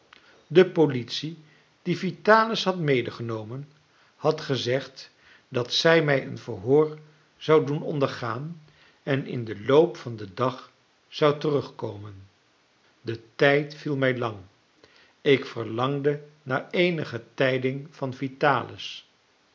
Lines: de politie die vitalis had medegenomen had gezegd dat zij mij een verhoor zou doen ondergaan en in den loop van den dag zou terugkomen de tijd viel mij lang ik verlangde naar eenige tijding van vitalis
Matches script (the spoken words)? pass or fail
pass